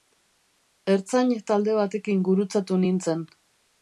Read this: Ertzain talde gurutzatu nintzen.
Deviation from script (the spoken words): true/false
true